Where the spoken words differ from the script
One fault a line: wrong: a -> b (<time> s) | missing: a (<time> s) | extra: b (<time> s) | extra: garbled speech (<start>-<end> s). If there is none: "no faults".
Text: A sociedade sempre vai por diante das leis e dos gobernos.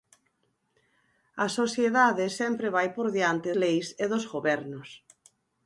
missing: das (3.5 s)